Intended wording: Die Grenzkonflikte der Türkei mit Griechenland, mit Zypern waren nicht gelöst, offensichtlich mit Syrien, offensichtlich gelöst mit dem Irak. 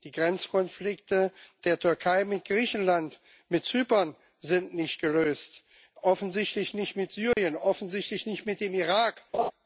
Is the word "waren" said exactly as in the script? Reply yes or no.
no